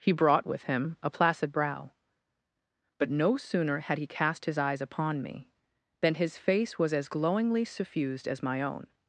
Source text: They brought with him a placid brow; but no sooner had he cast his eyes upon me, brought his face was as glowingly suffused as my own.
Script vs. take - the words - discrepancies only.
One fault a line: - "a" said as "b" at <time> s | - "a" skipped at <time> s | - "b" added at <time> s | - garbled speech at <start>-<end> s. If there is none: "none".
- "They" said as "He" at 0.0 s
- "brought" said as "than" at 6.0 s